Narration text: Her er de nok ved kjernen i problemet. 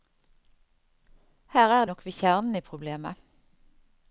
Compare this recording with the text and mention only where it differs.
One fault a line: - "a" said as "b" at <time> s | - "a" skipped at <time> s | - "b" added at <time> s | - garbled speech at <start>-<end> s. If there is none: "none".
- "de" skipped at 1.9 s